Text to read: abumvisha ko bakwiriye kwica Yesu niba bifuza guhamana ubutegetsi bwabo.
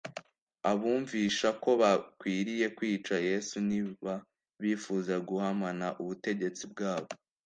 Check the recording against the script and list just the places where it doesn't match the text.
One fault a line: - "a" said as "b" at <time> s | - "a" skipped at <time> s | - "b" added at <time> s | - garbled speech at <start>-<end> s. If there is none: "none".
none